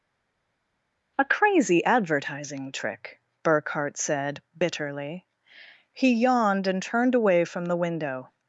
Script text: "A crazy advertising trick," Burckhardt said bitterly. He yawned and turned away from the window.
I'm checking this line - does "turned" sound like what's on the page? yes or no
yes